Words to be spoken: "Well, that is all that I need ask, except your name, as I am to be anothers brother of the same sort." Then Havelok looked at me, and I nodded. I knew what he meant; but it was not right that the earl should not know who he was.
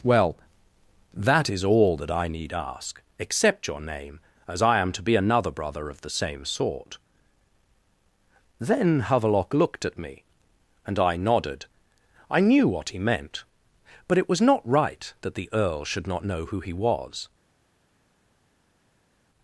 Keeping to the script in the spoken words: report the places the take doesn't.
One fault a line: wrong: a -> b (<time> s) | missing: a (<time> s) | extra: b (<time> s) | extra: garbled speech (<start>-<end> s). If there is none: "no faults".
wrong: anothers -> another (5.2 s)